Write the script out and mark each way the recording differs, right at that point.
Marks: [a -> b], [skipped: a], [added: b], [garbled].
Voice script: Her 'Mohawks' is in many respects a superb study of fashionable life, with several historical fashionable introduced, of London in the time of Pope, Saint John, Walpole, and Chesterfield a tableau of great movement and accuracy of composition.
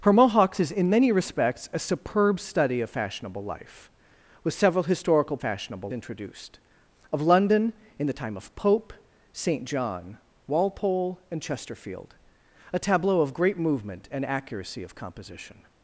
Her 'Mohawks' is in many respects a superb study of fashionable life, with several historical fashionable introduced, of London in the time of Pope, Saint John, Walpole, and Chesterfield a tableau of great movement and accuracy of composition.